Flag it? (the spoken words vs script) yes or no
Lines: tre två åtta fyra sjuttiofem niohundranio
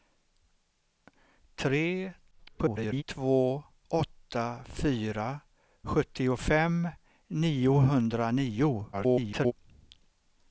yes